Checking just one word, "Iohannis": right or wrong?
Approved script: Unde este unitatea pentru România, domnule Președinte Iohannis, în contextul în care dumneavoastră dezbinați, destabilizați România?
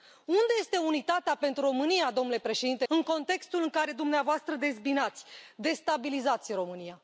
wrong